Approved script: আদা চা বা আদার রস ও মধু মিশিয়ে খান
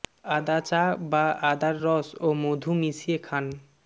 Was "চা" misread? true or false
false